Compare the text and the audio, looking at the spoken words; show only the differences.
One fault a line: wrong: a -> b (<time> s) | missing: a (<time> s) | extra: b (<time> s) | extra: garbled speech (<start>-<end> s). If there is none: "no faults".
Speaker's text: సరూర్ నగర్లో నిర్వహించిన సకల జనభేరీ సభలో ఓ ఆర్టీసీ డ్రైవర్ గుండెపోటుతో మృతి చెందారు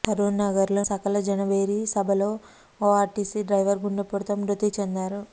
missing: నిర్వహించిన (0.8 s)